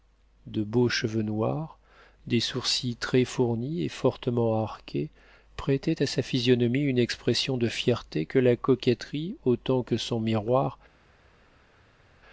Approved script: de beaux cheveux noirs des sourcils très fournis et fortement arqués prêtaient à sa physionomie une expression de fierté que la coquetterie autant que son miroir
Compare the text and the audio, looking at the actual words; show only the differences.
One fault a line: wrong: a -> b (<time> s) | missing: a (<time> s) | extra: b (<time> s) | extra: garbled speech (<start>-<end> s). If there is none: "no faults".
no faults